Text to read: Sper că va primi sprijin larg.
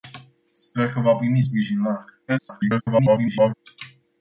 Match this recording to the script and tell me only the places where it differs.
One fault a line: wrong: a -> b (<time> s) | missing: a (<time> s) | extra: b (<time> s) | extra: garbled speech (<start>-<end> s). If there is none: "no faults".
extra: garbled speech (2.3-3.5 s)